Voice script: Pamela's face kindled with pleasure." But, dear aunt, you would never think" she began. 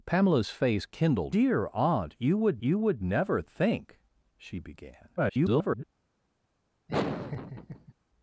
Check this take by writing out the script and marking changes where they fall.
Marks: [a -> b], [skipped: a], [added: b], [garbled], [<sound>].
Pamela's face kindled [with pleasure." But, dear aunt, -> dear aunt you would] you would never think" she began. [garbled] [laugh]